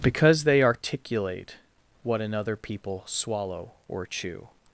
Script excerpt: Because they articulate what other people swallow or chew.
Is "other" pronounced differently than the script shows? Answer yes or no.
yes